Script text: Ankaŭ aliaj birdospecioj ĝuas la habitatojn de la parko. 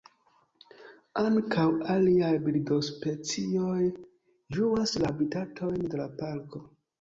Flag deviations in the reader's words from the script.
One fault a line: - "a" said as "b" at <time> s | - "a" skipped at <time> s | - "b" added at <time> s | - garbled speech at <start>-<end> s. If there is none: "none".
none